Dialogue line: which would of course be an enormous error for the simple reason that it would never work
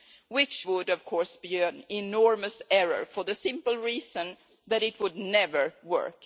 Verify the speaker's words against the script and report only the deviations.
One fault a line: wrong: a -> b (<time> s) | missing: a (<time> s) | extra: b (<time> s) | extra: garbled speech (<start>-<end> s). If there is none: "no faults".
no faults